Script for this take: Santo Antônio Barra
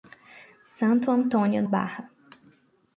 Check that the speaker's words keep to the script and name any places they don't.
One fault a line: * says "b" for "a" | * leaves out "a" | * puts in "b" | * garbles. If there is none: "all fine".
all fine